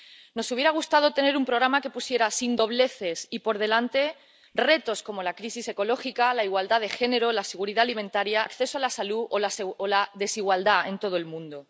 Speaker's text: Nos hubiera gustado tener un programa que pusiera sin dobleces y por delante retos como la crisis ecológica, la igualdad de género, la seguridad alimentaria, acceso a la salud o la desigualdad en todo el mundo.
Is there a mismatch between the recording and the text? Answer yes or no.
no